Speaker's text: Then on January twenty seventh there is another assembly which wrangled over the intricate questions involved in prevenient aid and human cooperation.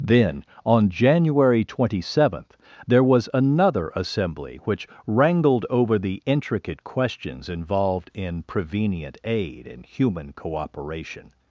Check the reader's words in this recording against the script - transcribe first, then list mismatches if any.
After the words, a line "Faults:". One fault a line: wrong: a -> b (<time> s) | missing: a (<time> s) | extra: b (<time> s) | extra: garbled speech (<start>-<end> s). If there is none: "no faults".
Then on January twenty seventh there was another assembly which wrangled over the intricate questions involved in prevenient aid and human cooperation.
Faults:
wrong: is -> was (3.0 s)